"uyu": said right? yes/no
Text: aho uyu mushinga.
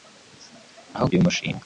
yes